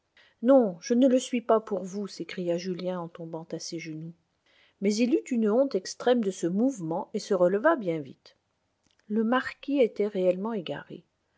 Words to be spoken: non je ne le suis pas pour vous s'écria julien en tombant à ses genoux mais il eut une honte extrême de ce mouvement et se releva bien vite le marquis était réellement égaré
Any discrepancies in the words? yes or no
no